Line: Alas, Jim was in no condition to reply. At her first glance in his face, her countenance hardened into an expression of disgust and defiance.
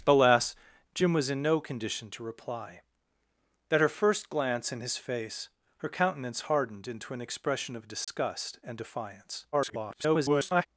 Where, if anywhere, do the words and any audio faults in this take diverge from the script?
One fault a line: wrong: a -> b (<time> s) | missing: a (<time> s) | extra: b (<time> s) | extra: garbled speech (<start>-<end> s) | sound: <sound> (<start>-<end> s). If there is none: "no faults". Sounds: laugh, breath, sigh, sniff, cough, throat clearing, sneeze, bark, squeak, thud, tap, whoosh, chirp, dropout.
sound: dropout (8.0-8.1 s)
extra: garbled speech (9.5-10.7 s)